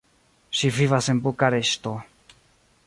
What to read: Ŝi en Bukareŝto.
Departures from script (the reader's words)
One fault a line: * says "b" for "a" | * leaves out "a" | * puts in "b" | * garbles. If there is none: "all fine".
* puts in "vivas"